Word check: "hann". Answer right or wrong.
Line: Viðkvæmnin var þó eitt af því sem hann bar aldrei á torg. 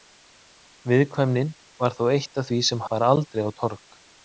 wrong